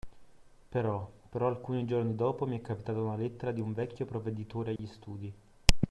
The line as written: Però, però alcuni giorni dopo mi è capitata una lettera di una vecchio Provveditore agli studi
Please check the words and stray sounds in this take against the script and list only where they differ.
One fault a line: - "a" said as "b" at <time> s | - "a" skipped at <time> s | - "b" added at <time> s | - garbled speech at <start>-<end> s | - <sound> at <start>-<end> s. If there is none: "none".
- "una" said as "un" at 3.6 s
- dropout at 4.8-4.8 s